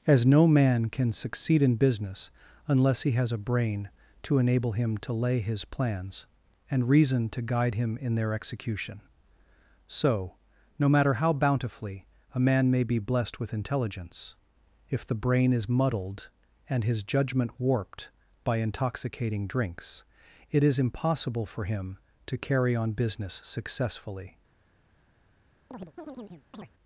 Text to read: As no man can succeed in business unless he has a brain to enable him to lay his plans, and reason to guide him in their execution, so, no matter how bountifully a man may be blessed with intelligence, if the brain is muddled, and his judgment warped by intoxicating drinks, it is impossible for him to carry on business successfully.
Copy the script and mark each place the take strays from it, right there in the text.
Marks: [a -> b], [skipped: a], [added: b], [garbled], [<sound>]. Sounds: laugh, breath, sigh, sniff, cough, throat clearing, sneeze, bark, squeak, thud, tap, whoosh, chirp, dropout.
As no man can succeed in business unless he has a brain to enable him to lay his plans, and reason to guide him in their execution, so, no matter how bountifully a man may be blessed with intelligence, if the brain is muddled, and his judgment warped by intoxicating drinks, it is impossible for him to carry on business successfully. [chirp]